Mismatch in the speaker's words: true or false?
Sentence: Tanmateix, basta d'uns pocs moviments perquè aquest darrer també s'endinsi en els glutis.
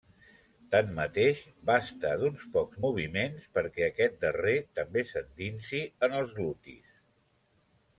false